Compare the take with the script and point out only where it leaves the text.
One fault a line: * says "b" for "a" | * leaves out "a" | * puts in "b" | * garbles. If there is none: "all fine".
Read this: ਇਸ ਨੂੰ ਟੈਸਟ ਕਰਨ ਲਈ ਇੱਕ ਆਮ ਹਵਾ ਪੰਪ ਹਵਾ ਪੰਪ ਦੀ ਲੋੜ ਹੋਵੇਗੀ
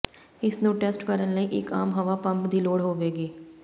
* leaves out "ਹਵਾ ਪੰਪ"